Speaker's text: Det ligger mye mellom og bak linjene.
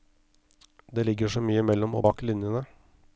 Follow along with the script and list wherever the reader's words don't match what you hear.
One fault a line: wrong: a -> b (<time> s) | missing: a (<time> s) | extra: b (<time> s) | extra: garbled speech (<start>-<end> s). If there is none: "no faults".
extra: så (1.3 s)